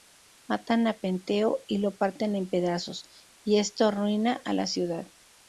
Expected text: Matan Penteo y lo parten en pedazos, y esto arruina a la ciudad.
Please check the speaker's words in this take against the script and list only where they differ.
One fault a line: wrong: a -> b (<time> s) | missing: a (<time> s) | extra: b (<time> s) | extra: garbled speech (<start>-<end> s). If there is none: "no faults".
extra: a (0.9 s)